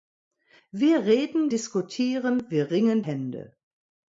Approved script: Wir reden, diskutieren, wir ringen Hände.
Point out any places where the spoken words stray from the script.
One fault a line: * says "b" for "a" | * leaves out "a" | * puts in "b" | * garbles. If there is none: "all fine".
all fine